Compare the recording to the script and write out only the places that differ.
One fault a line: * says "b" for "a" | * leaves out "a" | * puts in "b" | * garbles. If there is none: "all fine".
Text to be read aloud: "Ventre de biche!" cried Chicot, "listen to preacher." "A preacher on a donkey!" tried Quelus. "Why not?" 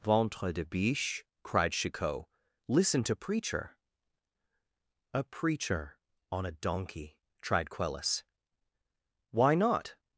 all fine